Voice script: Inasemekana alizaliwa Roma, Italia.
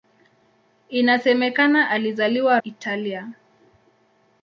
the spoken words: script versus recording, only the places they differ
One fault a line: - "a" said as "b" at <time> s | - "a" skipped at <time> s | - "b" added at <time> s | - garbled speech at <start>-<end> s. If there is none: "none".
- "Roma" skipped at 2.6 s